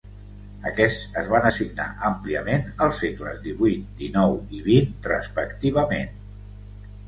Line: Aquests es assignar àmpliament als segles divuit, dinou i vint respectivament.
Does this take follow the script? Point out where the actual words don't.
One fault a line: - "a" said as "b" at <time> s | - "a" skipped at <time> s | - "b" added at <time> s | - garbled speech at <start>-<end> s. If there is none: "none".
- "van" added at 1.3 s